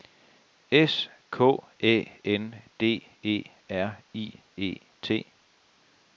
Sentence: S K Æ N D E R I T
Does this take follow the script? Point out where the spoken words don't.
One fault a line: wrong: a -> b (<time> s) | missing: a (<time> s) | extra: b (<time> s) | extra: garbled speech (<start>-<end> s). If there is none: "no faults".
extra: E (4.6 s)